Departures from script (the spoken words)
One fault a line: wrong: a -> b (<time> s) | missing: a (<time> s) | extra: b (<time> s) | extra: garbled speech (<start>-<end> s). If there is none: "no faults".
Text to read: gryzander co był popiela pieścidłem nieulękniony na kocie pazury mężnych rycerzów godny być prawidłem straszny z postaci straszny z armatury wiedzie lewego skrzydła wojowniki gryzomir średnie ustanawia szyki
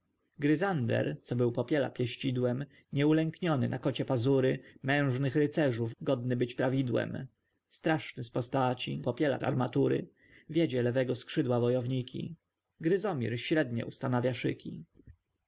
wrong: straszny -> popiela (9.0 s)